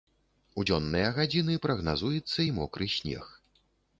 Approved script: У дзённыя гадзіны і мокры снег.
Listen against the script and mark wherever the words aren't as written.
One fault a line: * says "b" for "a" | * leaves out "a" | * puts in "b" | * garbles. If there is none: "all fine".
* puts in "прагназуецца"